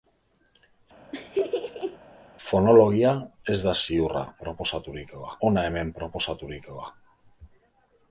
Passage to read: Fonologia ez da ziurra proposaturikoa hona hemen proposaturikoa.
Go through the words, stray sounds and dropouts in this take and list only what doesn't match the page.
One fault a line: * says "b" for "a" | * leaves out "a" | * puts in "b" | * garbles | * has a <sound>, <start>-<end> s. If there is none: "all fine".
* has a laugh, 1.1-2.0 s